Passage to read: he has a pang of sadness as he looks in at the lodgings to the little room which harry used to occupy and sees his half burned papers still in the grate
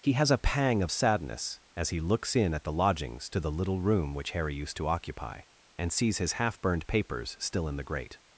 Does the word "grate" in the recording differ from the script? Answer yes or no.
no